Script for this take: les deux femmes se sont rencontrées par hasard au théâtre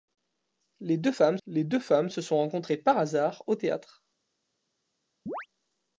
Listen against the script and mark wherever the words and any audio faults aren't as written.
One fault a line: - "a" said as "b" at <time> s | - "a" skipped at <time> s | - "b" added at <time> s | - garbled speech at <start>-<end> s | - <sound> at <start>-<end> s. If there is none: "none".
- "les deux femmes" added at 1.5 s
- chirp at 5.3-5.5 s